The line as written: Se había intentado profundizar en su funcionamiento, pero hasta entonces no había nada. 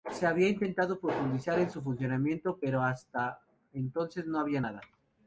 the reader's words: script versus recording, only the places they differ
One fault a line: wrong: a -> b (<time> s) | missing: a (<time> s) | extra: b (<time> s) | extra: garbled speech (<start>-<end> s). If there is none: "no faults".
no faults